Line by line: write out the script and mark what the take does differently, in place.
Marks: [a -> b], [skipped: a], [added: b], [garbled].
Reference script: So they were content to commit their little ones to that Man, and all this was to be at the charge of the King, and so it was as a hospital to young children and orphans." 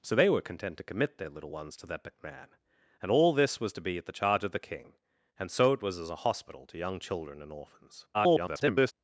So they were content to commit their little ones to that Man, and all this was to be at the charge of the King, and so it was as a hospital to young children and orphans." [garbled]